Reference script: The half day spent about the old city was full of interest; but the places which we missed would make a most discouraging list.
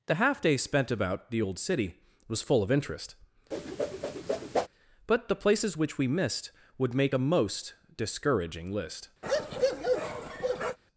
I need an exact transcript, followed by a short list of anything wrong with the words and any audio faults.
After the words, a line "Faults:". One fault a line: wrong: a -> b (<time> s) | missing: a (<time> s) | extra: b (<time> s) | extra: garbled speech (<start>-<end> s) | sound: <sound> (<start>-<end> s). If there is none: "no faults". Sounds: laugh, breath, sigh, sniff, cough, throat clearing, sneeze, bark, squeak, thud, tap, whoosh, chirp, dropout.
The half day spent about the old city was full of interest; but the places which we missed would make a most discouraging list.
Faults:
sound: whoosh (3.5-4.7 s)
sound: bark (9.2-10.8 s)